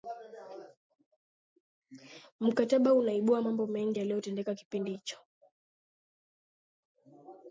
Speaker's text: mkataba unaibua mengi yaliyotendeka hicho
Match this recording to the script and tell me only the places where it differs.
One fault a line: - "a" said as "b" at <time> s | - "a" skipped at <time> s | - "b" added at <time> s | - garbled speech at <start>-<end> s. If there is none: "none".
- "mambo" added at 3.4 s
- "kipindi" added at 4.5 s